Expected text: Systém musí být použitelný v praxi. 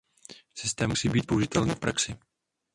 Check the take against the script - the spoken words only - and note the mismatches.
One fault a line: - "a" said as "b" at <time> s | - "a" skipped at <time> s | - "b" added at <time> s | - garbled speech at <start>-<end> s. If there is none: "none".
none